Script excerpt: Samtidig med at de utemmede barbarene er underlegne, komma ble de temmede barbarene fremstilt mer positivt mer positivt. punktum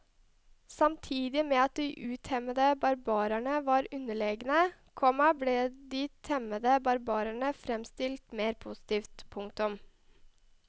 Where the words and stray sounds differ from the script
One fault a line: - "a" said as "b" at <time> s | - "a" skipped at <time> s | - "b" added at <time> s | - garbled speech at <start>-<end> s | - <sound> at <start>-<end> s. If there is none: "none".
- "er" said as "var" at 3.7 s
- "mer positivt" skipped at 9.3 s